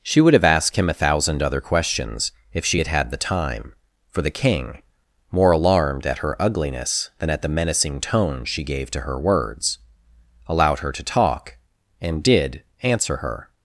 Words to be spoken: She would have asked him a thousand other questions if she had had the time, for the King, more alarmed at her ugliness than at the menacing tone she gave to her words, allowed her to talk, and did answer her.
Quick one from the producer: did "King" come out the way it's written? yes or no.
yes